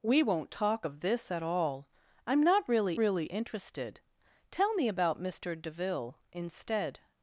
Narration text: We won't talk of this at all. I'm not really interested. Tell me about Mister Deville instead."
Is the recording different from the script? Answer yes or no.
yes